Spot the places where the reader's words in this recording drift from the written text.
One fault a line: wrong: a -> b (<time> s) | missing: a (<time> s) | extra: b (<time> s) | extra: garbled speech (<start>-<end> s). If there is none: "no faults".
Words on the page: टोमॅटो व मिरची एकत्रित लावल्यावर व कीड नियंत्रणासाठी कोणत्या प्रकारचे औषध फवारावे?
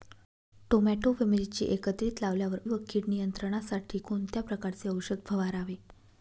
no faults